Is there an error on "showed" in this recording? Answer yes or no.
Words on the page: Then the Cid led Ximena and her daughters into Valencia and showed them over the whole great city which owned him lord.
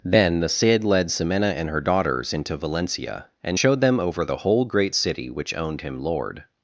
no